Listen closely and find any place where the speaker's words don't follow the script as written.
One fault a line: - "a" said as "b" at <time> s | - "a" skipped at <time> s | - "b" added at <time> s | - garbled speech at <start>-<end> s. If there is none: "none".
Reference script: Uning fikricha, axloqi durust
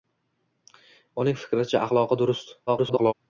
- garbled speech at 2.7-3.1 s